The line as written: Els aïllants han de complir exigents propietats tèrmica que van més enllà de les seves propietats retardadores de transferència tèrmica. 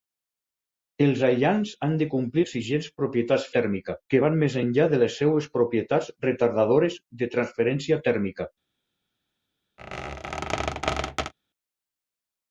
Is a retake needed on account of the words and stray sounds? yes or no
yes